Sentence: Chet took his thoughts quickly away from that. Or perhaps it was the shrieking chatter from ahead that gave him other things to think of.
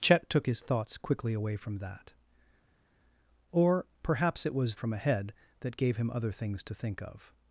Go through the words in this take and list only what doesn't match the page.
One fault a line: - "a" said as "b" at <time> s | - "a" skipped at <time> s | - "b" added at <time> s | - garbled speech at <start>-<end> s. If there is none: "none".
- "the shrieking chatter" skipped at 4.8 s